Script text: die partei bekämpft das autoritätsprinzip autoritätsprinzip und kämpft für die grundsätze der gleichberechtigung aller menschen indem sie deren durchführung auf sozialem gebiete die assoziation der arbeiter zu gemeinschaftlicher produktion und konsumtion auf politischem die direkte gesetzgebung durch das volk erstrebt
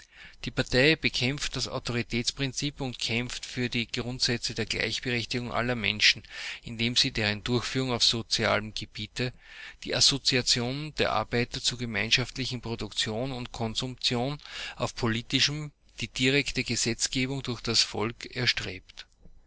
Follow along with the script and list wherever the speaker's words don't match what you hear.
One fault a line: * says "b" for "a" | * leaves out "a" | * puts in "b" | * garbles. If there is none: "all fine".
* leaves out "autoritätsprinzip"